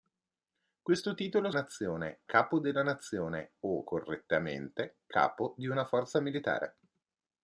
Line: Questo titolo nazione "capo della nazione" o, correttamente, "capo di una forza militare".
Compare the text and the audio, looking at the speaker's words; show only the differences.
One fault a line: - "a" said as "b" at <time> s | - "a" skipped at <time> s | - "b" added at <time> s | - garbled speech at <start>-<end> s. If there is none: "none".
none